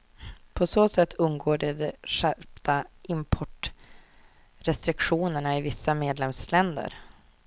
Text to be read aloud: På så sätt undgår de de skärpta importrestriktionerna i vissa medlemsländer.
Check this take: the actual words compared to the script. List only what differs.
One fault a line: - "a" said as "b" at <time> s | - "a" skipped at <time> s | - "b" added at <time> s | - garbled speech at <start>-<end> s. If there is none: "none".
none